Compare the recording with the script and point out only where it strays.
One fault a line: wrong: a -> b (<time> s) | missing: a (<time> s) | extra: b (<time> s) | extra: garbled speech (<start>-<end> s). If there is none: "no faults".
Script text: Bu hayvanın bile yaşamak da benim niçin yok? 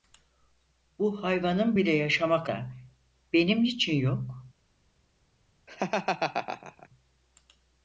no faults